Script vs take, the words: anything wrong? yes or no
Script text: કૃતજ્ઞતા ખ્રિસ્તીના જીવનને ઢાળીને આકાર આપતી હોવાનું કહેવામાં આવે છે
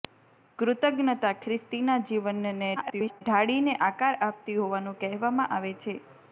yes